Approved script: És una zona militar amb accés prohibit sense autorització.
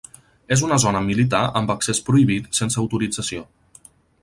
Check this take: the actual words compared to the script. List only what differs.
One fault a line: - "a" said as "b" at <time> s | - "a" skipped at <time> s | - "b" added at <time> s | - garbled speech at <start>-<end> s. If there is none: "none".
none